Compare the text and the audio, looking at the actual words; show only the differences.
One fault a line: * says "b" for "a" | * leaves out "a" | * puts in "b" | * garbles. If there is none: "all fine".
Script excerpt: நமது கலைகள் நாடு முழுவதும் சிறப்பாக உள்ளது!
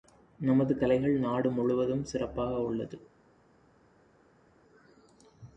all fine